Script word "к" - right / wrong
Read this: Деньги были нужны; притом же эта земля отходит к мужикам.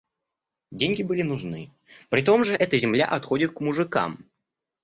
right